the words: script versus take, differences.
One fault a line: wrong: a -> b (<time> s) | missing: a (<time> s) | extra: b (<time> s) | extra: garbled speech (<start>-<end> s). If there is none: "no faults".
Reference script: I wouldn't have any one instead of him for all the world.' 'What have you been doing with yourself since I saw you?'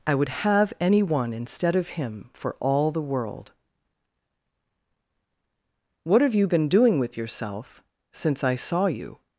wrong: wouldn't -> would (0.1 s)